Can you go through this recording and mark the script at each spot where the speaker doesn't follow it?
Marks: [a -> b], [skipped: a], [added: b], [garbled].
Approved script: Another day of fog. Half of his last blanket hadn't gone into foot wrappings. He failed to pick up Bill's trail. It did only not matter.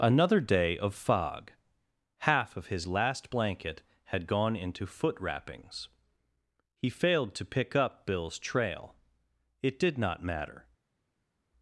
Another day of fog. Half of his last blanket [hadn't -> had] gone into foot wrappings. He failed to pick up Bill's trail. It did [skipped: only] not matter.